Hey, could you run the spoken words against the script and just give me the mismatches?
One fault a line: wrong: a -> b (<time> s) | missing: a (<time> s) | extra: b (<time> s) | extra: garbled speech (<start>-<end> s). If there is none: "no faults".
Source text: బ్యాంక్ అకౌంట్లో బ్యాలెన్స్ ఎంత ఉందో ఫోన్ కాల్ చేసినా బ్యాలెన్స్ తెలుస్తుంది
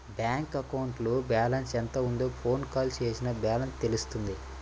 no faults